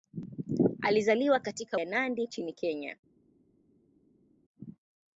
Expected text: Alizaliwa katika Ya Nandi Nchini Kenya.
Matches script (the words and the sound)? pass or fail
pass